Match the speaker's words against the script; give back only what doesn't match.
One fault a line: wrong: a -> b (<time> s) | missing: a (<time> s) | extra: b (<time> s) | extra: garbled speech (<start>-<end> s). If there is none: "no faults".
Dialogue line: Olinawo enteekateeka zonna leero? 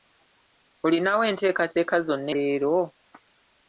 no faults